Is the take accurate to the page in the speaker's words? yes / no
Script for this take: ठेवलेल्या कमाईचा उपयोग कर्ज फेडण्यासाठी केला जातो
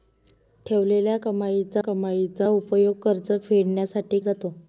no